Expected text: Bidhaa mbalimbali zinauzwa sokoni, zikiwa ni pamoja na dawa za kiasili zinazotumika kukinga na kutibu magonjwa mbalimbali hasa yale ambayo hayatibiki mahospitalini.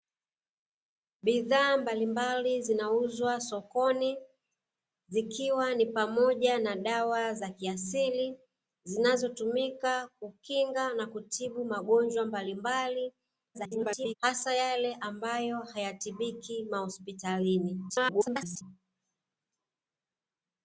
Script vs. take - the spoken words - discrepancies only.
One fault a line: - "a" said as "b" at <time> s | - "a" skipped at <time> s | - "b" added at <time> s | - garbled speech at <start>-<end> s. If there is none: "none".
- garbled speech at 13.5-14.1 s
- garbled speech at 17.9-18.6 s